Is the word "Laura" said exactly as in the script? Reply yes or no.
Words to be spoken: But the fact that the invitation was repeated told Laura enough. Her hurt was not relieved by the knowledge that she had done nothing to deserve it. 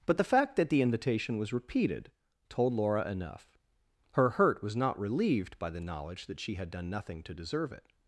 yes